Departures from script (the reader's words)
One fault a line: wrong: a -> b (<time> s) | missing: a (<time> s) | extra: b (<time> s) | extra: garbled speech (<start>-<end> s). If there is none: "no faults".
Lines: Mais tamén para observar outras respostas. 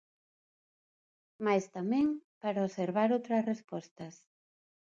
no faults